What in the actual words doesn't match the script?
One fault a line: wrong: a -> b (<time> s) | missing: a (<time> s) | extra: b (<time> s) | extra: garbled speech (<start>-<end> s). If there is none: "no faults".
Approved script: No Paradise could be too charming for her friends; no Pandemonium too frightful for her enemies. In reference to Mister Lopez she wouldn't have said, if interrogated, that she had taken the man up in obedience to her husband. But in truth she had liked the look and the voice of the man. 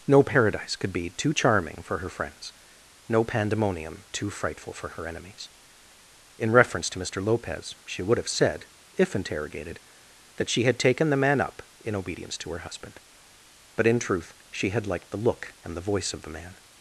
wrong: wouldn't -> would (8.0 s)